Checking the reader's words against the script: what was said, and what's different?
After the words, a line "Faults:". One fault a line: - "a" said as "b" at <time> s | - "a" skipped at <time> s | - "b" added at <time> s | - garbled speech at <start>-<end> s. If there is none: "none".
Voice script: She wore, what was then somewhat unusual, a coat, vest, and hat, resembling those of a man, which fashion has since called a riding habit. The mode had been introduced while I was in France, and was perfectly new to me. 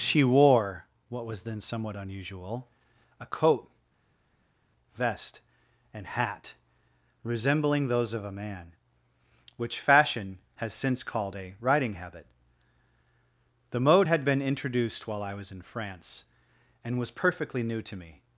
She wore, what was then somewhat unusual, a coat, vest, and hat, resembling those of a man, which fashion has since called a riding habit. The mode had been introduced while I was in France, and was perfectly new to me.
Faults:
none